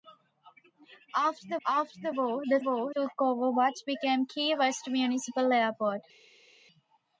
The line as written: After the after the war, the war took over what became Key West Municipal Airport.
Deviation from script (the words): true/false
false